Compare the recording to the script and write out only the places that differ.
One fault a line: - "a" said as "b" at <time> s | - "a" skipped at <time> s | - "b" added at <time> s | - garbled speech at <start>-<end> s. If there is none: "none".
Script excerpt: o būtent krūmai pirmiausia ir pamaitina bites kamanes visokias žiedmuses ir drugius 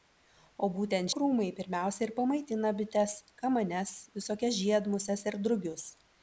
none